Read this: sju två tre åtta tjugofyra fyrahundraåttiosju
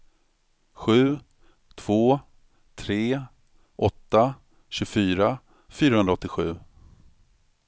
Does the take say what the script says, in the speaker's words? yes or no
yes